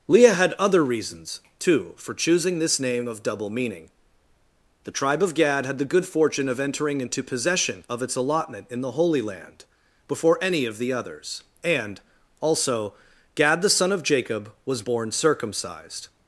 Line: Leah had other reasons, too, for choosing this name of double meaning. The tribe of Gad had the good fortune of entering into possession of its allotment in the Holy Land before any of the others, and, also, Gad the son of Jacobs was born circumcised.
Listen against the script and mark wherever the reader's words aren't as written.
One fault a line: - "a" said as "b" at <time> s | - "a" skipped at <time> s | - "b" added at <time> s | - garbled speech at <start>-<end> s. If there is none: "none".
- "Jacobs" said as "Jacob" at 14.0 s